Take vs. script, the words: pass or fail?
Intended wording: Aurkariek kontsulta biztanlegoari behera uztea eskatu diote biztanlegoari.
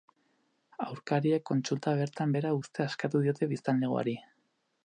fail